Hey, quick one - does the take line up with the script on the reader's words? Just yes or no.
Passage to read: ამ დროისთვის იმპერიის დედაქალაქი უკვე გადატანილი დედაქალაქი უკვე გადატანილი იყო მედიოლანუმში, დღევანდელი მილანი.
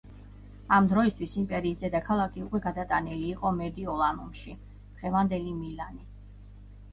no